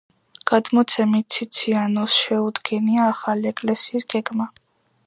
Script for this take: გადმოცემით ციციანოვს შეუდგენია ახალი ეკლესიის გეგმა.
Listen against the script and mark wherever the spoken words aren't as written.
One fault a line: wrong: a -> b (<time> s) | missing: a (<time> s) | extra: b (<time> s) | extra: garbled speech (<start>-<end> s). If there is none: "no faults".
no faults